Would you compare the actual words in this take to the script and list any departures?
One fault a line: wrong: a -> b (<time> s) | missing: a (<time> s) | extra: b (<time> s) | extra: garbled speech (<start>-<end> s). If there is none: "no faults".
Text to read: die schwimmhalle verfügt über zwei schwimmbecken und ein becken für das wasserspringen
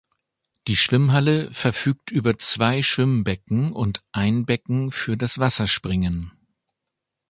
no faults